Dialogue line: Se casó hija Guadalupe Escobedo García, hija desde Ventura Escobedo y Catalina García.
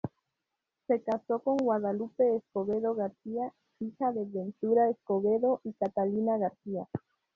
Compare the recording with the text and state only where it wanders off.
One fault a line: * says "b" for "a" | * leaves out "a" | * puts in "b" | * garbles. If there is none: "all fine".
* says "con" for "hija"
* says "de" for "desde"